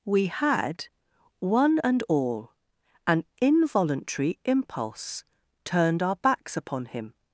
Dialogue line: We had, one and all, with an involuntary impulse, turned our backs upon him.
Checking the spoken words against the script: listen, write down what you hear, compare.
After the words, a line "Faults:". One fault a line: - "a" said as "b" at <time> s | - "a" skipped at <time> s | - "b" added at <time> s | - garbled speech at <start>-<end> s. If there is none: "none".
We had, one and all, an involuntary impulse, turned our backs upon him.
Faults:
- "with" skipped at 2.5 s